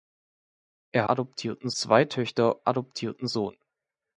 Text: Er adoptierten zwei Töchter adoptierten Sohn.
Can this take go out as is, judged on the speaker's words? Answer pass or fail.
pass